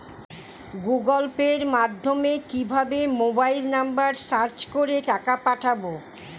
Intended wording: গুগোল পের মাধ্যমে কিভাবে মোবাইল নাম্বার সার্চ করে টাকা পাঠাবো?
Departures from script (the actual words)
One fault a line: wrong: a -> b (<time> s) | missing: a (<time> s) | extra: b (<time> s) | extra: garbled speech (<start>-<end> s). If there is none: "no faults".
no faults